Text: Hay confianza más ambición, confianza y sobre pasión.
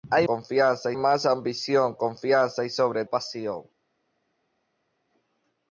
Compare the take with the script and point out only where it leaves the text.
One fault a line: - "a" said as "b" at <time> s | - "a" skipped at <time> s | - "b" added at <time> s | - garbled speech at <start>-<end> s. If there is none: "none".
none